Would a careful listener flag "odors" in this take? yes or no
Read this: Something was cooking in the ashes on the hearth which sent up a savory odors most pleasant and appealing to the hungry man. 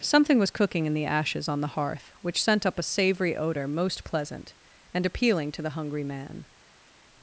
yes